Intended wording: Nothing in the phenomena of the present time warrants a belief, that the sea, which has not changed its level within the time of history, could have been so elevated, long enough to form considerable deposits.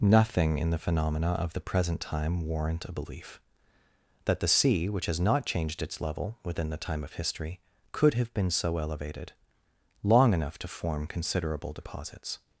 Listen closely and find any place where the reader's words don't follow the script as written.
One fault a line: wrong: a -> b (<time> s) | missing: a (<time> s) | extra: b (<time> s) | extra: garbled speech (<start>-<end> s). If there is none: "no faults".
wrong: warrants -> warrant (2.5 s)